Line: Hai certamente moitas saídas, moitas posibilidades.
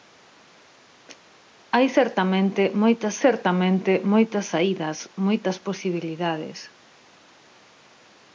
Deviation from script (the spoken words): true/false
true